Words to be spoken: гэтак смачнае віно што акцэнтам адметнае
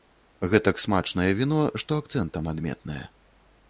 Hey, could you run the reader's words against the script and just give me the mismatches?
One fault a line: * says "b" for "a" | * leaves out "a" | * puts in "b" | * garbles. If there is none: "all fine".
all fine